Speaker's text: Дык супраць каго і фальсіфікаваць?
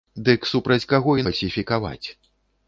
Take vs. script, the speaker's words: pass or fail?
pass